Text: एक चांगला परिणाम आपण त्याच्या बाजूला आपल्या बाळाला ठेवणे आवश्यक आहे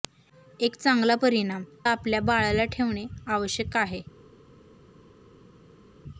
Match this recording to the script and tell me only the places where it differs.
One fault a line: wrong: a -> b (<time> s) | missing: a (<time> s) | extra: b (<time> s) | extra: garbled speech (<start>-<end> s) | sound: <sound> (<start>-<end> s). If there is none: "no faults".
missing: आपण त्याच्या बाजूला (1.6 s)